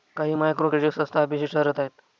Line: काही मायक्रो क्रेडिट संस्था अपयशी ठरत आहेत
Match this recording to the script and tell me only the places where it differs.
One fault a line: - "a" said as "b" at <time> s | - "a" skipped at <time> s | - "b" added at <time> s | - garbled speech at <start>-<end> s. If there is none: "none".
none